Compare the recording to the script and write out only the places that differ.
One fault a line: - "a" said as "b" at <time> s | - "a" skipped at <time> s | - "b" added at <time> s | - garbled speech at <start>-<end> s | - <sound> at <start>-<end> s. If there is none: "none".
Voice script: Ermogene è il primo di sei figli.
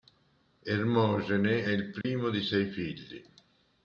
- dropout at 2.0-2.0 s